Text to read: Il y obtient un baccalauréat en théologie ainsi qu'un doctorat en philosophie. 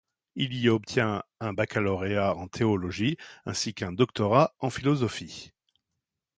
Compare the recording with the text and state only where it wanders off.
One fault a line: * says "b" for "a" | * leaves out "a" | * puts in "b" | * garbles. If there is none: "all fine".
all fine